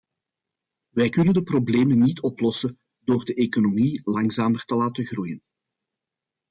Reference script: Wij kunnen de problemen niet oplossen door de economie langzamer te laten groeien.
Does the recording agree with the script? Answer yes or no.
yes